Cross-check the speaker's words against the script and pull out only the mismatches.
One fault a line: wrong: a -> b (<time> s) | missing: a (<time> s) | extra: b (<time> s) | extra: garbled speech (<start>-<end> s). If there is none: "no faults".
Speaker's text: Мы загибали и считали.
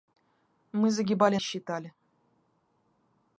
no faults